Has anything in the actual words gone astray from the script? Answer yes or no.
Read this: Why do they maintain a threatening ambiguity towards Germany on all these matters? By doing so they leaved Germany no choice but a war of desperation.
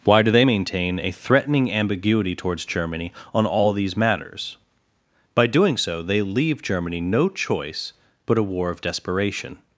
yes